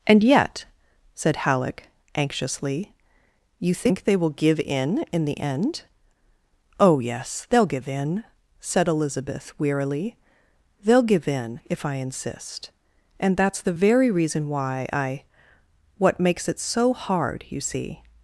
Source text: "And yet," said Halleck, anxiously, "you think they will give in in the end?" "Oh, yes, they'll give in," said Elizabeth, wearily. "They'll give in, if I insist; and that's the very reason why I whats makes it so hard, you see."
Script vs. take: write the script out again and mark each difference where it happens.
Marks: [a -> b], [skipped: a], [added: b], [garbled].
"And yet," said Halleck, anxiously, "you think they will give in in the end?" "Oh, yes, they'll give in," said Elizabeth, wearily. "They'll give in, if I insist; and that's the very reason why I [whats -> what] makes it so hard, you see."